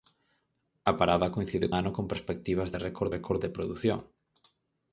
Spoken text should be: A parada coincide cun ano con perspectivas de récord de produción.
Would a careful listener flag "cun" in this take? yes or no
yes